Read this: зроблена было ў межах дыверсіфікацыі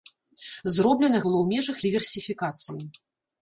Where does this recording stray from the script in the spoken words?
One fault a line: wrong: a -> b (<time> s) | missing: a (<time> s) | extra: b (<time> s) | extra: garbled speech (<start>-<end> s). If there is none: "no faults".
no faults